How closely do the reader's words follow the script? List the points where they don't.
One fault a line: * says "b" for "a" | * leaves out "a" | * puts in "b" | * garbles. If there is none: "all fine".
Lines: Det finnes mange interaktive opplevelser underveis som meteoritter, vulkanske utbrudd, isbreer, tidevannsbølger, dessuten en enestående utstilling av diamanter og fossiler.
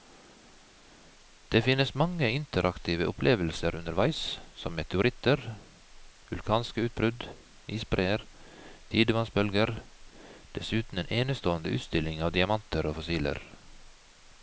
all fine